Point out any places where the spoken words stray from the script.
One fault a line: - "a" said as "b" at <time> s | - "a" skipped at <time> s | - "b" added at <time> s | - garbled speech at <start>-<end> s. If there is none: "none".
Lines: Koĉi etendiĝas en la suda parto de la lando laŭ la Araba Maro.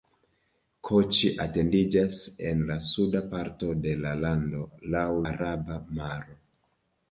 - "la" skipped at 5.1 s